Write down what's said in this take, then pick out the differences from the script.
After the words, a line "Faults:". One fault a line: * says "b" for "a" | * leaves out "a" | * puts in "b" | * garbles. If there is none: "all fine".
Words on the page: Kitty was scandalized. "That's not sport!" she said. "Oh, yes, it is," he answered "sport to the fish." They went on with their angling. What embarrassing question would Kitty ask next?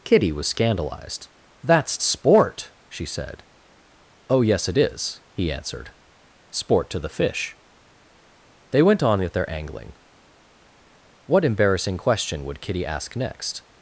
Kitty was scandalized. "That's sport!" she said. "Oh, yes, it is," he answered "sport to the fish." They went on with their angling. What embarrassing question would Kitty ask next?
Faults:
* leaves out "not"